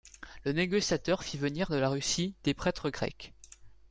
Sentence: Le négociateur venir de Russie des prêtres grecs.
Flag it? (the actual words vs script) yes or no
yes